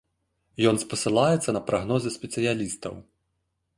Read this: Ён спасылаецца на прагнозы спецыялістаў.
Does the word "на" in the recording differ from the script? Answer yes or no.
no